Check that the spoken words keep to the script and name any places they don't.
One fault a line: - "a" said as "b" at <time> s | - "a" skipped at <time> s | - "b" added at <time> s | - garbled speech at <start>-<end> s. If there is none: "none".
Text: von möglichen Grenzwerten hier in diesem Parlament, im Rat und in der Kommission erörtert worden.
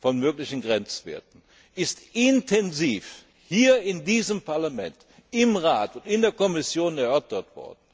- "ist intensiv" added at 1.8 s